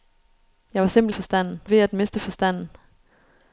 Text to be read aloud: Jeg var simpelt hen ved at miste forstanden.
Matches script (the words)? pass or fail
fail